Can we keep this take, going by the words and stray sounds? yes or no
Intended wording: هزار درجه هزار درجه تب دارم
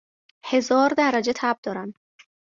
no